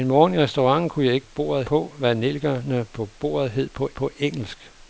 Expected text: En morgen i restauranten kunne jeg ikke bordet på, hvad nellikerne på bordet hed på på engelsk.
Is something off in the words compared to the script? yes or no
no